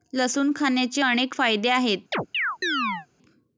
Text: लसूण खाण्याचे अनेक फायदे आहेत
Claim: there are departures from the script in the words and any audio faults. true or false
true